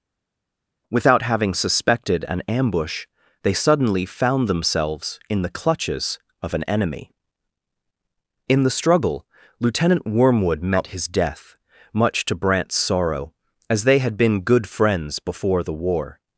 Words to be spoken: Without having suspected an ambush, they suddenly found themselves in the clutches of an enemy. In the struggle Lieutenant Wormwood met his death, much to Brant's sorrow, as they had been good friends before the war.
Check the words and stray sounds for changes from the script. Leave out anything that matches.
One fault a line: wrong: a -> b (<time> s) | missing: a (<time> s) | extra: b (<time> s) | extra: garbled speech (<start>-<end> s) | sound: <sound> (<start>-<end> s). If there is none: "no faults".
no faults